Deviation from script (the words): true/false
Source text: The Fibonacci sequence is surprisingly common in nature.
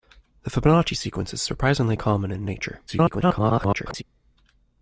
true